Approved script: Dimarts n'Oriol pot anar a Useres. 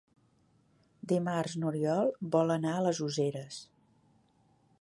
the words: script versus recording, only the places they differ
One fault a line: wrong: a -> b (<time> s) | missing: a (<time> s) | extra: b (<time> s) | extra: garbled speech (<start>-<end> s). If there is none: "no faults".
wrong: pot -> vol (2.4 s)
extra: les (2.9 s)